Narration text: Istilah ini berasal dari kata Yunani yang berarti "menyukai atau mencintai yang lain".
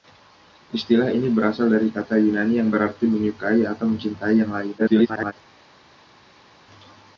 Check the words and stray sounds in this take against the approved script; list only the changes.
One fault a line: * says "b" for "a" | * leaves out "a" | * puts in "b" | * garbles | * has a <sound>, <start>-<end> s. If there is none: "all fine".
* garbles